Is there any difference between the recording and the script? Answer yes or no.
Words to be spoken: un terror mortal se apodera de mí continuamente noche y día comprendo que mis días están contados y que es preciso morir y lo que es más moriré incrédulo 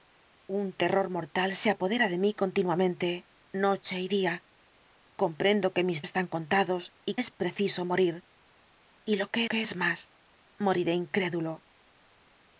yes